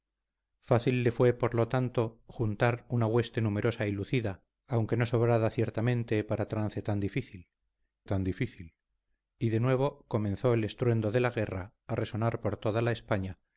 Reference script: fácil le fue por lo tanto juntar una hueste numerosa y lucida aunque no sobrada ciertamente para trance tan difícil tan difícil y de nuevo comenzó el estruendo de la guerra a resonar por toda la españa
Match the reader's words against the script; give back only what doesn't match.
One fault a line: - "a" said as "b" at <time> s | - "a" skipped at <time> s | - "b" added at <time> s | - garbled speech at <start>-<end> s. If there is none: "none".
none